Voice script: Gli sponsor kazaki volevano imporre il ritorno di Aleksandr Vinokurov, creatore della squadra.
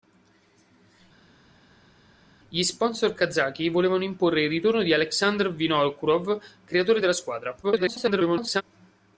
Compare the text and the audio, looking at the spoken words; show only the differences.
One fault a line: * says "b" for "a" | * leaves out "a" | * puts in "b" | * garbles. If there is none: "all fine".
* garbles